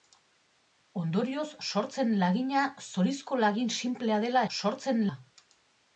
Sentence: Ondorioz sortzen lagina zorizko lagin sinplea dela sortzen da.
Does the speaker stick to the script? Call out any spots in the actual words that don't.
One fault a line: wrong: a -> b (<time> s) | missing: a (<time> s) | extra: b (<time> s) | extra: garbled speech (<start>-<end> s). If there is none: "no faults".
no faults